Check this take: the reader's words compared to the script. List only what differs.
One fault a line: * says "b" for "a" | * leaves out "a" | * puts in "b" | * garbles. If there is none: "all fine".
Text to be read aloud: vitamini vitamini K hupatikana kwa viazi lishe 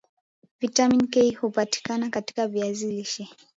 * leaves out "vitamini"
* says "katika" for "kwa"